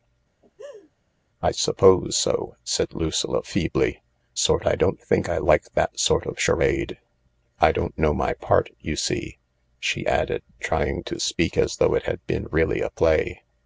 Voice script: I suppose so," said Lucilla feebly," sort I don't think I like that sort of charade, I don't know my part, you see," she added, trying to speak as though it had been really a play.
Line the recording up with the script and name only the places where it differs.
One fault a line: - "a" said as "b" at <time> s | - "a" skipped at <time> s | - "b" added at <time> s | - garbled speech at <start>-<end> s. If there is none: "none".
none